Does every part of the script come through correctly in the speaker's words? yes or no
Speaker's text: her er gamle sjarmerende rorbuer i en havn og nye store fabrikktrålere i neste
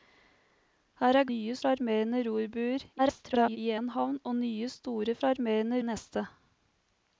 no